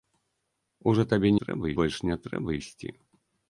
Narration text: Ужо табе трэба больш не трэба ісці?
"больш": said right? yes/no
yes